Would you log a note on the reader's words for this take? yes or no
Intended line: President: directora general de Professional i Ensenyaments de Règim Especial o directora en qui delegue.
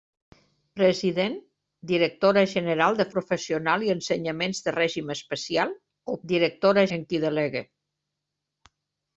no